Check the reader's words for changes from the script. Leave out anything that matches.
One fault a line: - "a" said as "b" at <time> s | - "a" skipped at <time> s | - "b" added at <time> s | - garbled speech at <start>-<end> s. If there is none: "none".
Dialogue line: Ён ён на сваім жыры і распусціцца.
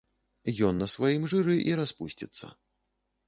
- "ён" skipped at 0.8 s